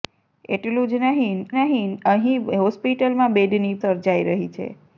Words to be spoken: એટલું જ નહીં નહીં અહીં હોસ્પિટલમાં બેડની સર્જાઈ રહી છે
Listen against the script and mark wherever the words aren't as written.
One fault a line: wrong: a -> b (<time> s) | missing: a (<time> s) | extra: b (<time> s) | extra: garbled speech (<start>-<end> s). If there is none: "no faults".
no faults